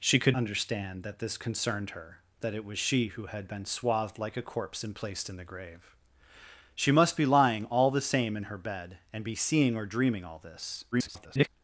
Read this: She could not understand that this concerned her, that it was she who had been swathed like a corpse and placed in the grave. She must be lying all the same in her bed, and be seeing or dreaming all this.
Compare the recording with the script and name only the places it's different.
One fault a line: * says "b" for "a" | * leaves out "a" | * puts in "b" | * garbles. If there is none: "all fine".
* leaves out "not"
* garbles